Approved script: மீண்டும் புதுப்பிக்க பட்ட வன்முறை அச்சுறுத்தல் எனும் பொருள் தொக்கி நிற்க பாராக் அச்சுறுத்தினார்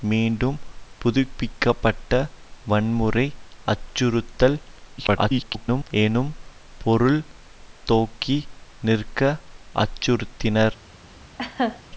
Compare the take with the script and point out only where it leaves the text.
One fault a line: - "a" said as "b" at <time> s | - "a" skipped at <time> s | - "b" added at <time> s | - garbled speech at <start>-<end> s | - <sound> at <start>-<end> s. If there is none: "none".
- garbled speech at 5.0-5.9 s
- "பாராக்" skipped at 9.2 s
- laugh at 11.4-11.8 s